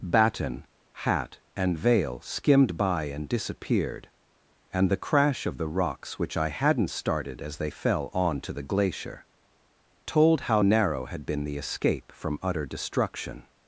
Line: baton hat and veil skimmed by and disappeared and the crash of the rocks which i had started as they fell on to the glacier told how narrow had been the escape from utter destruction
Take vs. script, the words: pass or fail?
fail